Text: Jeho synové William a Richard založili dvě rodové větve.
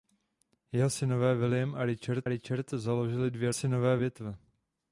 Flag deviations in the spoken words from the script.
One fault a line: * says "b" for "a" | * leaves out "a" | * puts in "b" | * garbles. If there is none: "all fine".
* puts in "Richard"
* says "synové" for "rodové"